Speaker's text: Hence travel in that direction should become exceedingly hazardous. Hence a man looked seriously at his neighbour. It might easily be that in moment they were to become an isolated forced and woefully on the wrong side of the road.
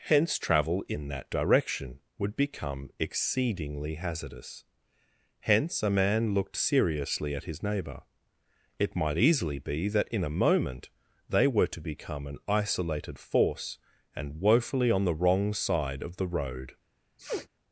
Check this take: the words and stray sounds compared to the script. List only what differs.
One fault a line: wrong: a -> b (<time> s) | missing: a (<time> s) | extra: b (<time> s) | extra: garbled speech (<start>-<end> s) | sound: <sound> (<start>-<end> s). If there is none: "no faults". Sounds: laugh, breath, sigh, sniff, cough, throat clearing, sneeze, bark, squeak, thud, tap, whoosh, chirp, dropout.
wrong: should -> would (2.2 s)
extra: a (10.2 s)
wrong: forced -> force (13.2 s)
sound: sniff (17.2-17.5 s)